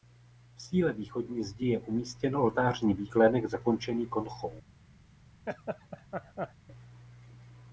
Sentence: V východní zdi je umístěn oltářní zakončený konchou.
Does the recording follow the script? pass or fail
fail